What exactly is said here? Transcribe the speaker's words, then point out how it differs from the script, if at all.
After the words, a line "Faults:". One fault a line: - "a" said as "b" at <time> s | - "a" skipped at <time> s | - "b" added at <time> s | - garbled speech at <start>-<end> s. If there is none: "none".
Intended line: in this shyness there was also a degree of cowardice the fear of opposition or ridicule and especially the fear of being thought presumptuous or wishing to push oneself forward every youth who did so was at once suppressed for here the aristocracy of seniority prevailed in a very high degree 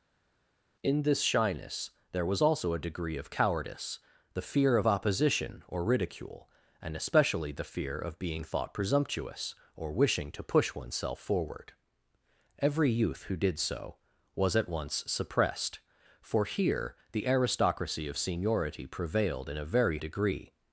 in this shyness there was also a degree of cowardice the fear of opposition or ridicule and especially the fear of being thought presumptuous or wishing to push oneself forward every youth who did so was at once suppressed for here the aristocracy of seniority prevailed in a very degree
Faults:
- "high" skipped at 20.0 s